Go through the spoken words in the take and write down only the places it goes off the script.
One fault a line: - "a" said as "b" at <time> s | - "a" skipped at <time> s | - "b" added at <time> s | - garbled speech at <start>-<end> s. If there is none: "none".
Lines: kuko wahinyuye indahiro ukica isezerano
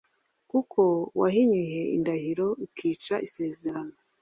none